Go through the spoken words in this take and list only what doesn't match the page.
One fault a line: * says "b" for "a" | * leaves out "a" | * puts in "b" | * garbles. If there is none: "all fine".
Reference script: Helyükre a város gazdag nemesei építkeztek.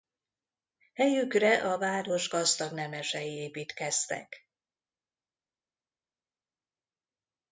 all fine